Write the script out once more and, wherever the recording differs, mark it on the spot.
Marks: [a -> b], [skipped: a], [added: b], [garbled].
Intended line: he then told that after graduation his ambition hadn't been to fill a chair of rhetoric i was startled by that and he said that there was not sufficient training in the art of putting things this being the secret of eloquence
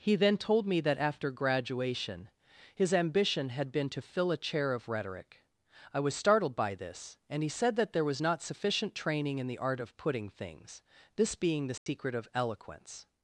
he then told [added: me] that after graduation his ambition [hadn't -> had] been to fill a chair of rhetoric i was startled by [that -> this] and he said that there was not sufficient training in the art of putting things this being the secret of eloquence